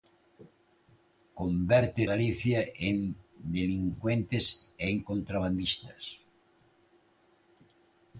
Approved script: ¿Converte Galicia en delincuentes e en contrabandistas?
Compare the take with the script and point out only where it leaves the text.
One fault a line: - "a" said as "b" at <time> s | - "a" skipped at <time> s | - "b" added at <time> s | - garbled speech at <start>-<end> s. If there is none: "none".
none